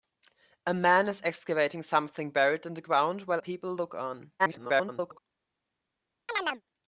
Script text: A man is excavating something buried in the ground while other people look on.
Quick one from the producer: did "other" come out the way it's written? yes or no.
no